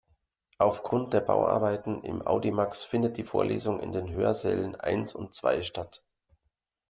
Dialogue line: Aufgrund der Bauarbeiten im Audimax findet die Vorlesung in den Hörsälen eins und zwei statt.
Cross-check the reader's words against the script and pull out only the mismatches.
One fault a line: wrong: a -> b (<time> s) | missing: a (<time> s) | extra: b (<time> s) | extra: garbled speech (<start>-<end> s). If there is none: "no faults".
no faults